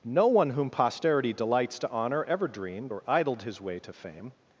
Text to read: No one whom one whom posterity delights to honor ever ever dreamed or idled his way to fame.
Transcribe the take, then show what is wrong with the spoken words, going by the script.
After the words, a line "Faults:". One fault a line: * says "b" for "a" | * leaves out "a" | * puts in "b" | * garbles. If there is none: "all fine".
No one whom posterity delights to honor ever dreamed or idled his way to fame.
Faults:
* leaves out "one whom"
* leaves out "ever"